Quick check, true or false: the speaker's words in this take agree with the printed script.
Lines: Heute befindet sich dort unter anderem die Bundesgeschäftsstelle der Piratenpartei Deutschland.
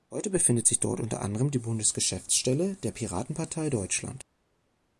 true